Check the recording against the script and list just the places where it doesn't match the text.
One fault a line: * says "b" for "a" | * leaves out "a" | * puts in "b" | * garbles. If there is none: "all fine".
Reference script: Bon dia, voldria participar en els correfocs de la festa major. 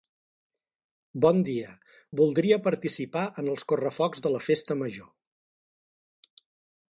all fine